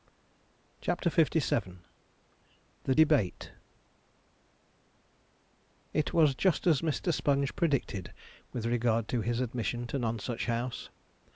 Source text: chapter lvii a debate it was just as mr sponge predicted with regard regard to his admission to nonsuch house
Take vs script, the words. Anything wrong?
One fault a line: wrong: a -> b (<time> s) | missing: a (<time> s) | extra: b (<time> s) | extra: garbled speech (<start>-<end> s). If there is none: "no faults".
wrong: a -> the (2.9 s)
missing: regard (9.1 s)